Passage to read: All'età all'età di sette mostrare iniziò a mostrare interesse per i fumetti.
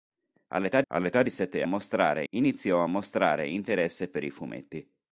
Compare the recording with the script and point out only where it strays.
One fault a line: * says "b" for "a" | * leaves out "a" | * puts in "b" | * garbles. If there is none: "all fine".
all fine